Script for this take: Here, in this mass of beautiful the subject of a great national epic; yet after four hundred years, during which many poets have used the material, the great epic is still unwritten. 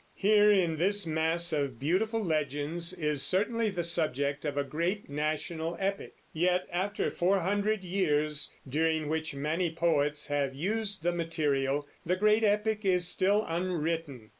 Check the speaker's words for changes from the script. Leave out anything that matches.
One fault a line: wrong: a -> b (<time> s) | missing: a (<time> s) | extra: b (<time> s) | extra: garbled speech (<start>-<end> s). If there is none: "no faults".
extra: legends is certainly (2.2 s)